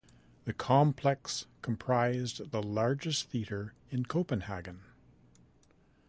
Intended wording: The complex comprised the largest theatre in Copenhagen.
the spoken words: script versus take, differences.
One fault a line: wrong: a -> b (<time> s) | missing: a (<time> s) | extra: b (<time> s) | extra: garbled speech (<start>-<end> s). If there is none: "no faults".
no faults